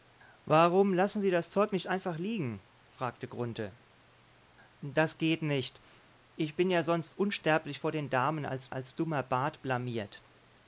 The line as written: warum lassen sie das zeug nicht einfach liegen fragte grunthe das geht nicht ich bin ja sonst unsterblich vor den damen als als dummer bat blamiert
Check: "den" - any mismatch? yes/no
no